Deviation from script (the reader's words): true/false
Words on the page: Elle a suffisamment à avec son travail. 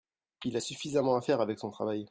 true